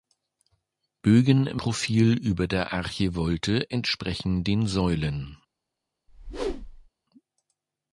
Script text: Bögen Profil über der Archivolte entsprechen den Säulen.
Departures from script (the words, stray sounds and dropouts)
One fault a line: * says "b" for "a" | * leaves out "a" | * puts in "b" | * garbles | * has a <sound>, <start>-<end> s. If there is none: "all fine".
* has a whoosh, 6.1-6.9 s